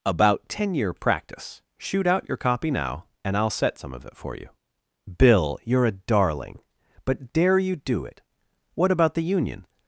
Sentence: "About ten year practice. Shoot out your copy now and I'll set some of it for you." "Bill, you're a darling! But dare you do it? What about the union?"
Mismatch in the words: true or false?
false